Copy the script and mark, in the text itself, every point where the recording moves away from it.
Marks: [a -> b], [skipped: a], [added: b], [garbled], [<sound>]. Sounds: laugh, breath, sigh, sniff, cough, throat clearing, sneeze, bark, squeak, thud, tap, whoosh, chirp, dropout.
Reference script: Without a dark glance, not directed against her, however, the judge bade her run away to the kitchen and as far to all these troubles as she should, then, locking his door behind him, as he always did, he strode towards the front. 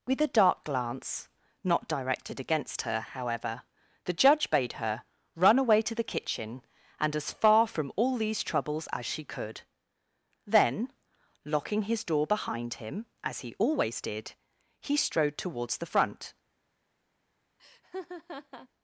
[Without -> With] a dark glance, not directed against her, however, the judge bade her run away to the kitchen and as far [to -> from] all these troubles as she [should, -> could] then, locking his door behind him, as he always did, he strode towards the front. [laugh]